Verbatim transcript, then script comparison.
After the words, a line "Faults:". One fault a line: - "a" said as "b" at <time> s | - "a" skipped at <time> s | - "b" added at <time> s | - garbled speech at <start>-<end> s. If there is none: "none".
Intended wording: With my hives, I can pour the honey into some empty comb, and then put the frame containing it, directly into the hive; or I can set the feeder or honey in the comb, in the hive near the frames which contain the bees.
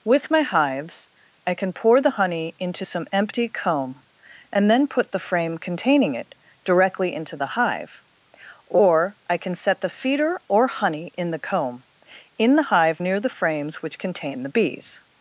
With my hives, I can pour the honey into some empty comb, and then put the frame containing it, directly into the hive; or I can set the feeder or honey in the comb, in the hive near the frames which contain the bees.
Faults:
none